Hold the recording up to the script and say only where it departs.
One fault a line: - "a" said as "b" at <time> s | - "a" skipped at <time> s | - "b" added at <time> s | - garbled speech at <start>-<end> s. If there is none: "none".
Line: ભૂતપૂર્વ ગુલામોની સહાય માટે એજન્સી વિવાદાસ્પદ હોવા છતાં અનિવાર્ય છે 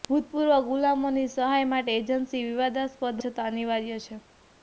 - "હોવા" skipped at 3.2 s